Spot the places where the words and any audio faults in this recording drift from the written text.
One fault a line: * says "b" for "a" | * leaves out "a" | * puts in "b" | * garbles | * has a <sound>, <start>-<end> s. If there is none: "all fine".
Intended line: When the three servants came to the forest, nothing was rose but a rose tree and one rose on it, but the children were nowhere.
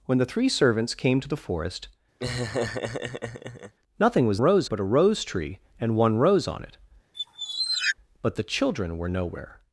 * has a laugh, 2.2-3.7 s
* has a squeak, 7.1-8.0 s